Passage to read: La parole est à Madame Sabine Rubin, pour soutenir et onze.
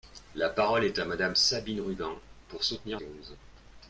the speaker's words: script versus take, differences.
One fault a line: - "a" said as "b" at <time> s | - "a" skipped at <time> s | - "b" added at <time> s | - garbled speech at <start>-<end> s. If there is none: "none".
none